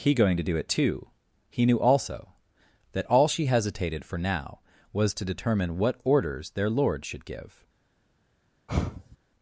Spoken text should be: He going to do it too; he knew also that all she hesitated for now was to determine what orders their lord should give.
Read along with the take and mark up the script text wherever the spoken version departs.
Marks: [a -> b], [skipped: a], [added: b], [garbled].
He going to do it too; he knew also that all she hesitated for now was to determine what orders their lord should give.